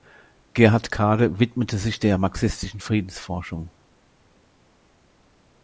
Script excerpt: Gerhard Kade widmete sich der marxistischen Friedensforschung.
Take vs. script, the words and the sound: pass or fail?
pass